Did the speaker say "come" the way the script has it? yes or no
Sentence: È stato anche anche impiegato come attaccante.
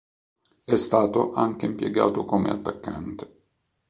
yes